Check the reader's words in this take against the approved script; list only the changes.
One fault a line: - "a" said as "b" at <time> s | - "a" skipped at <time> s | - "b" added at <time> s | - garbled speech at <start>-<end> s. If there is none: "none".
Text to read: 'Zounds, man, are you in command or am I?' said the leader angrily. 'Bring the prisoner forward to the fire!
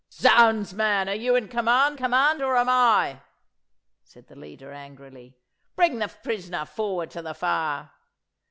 - "command" added at 1.9 s